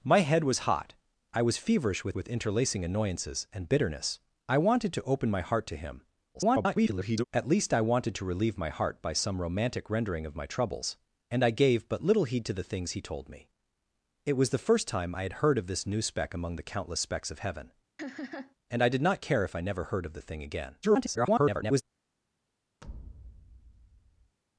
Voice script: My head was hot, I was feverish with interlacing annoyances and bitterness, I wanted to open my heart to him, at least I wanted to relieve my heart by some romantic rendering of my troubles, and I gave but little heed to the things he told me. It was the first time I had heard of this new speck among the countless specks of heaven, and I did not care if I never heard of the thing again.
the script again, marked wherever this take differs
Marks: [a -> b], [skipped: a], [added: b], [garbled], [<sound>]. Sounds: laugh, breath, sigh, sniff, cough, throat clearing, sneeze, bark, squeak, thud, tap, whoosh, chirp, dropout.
My head was hot, I was feverish with [added: with] interlacing annoyances and bitterness, I wanted to open my heart to him, [garbled] at least I wanted to relieve my heart by some romantic rendering of my troubles, and I gave but little heed to the things he told me. It was the first time I had heard of this new speck among the countless specks of heaven, [laugh] and I did not care if I never heard of the thing again. [garbled] [thud]